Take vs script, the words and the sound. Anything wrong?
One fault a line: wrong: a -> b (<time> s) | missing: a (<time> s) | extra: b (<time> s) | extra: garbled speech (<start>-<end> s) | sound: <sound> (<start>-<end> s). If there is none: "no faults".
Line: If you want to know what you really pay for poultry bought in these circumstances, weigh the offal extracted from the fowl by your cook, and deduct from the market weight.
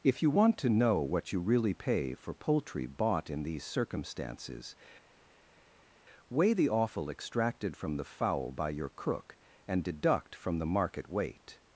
no faults